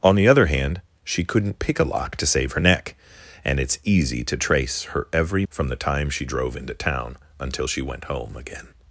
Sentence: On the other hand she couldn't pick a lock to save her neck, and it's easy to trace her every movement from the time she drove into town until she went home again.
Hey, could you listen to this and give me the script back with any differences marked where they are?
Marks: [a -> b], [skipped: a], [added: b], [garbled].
On the other hand she couldn't pick a lock to save her neck, and it's easy to trace her every [skipped: movement] from the time she drove into town until she went home again.